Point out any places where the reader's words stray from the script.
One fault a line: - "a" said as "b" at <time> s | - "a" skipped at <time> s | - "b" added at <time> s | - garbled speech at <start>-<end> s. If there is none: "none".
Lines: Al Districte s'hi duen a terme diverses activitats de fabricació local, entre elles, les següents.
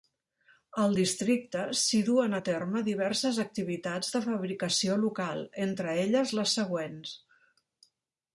none